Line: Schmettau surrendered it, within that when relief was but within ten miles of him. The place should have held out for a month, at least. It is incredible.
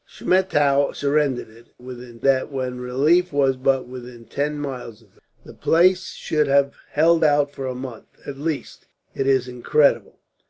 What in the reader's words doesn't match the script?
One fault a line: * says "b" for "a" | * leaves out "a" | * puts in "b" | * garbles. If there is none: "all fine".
all fine